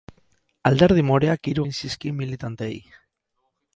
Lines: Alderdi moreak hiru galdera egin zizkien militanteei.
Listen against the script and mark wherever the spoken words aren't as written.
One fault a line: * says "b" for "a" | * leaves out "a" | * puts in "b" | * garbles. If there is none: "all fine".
* leaves out "galdera"